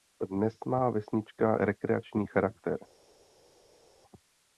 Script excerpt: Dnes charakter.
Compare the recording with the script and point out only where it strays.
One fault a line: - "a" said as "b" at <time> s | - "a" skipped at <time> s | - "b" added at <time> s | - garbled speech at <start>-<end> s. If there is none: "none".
- "má vesnička rekreační" added at 0.7 s